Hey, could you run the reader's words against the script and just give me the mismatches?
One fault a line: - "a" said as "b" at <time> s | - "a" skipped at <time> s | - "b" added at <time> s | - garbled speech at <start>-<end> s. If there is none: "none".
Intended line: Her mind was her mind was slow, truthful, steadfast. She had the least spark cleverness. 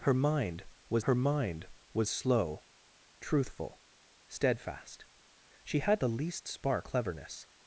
none